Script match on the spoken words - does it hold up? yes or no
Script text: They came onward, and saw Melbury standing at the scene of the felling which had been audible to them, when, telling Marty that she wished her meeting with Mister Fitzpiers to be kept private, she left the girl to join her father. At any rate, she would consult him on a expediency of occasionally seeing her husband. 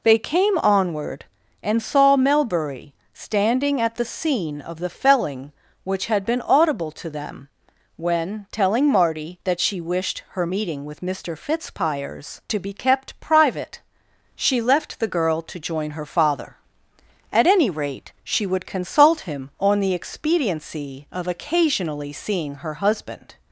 no